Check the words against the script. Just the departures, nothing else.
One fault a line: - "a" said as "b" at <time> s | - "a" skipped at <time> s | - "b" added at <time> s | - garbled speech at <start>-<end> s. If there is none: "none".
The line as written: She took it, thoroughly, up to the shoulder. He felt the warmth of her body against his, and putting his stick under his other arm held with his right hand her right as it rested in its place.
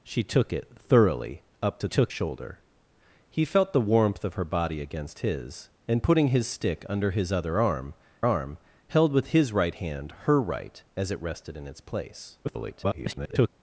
- "the" said as "took" at 1.9 s
- "arm" added at 8.3 s
- garbled speech at 12.4-13.5 s